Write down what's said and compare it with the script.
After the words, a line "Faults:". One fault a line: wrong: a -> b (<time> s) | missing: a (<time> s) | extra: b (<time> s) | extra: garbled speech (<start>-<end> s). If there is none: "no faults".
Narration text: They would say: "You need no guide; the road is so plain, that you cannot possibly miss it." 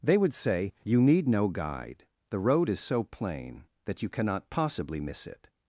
They would say: "You need no guide; the road is so plain, that you cannot possibly miss it."
Faults:
no faults